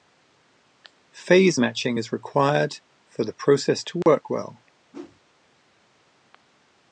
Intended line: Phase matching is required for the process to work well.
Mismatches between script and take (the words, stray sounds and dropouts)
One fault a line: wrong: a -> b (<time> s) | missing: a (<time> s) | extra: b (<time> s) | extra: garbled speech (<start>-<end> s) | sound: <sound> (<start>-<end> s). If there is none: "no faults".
sound: dropout (4.0-4.1 s)
sound: whoosh (4.9-5.2 s)